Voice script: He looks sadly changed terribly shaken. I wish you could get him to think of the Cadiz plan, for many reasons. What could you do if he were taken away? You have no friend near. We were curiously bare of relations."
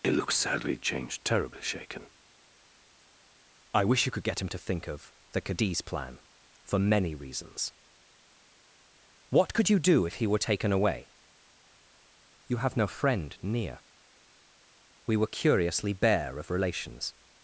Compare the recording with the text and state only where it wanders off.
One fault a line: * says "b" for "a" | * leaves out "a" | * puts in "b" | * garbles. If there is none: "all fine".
all fine